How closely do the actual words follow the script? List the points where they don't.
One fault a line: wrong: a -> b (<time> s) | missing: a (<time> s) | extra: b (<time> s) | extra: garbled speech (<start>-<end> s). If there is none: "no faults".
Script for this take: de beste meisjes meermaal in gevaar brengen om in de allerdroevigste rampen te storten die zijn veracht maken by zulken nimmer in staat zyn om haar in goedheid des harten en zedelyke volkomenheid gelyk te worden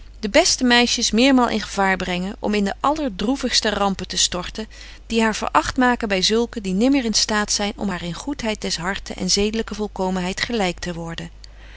wrong: zijn -> haar (5.2 s)
extra: die (6.6 s)